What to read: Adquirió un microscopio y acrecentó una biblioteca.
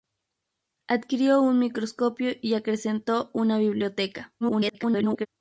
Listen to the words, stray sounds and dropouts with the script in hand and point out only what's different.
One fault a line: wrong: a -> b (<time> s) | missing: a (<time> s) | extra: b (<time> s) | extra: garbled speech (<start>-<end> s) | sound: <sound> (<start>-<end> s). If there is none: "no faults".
extra: garbled speech (4.4-5.3 s)